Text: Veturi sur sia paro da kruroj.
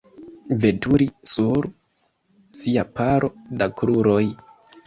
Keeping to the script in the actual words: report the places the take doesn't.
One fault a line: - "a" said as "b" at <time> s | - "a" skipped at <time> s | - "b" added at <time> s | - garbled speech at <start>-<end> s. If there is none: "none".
none